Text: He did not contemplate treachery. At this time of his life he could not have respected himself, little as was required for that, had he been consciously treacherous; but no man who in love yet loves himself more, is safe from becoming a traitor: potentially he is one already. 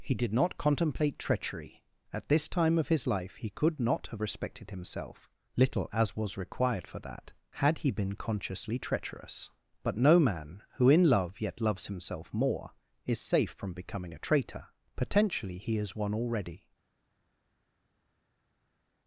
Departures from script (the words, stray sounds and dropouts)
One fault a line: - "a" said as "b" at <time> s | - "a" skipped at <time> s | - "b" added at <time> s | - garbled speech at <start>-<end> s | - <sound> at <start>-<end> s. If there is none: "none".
none